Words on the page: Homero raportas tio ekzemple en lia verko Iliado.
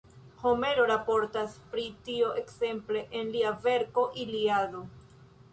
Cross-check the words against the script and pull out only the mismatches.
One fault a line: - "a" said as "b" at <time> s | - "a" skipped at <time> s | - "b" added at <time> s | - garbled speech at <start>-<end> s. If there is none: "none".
- "pri" added at 1.8 s